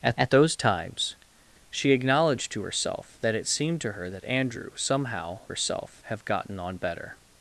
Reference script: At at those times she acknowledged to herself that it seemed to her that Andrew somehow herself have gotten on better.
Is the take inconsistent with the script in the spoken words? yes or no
no